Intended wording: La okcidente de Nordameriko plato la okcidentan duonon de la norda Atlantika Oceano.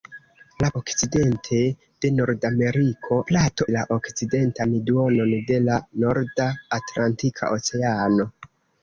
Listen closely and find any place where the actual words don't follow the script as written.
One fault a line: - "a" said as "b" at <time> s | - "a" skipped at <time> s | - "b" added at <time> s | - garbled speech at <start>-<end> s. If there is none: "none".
none